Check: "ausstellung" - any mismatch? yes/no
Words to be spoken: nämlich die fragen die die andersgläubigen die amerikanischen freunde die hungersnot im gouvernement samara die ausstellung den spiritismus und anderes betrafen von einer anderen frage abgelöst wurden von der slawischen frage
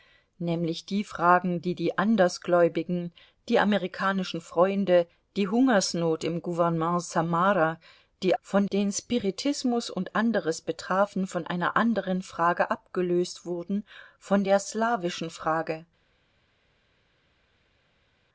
yes